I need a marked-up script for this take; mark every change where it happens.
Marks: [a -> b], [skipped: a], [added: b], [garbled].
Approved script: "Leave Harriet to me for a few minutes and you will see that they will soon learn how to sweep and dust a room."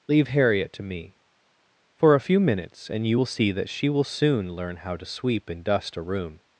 "Leave Harriet to me for a few minutes and you will see that [they -> she] will soon learn how to sweep and dust a room."